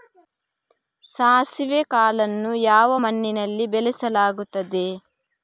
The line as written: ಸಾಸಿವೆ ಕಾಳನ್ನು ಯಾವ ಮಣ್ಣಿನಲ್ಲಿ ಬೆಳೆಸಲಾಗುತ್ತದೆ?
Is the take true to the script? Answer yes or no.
yes